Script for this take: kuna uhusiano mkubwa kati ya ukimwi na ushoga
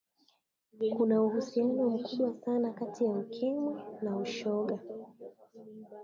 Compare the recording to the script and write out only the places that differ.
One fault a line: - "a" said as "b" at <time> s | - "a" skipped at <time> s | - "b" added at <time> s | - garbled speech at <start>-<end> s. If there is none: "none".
- "sana" added at 2.3 s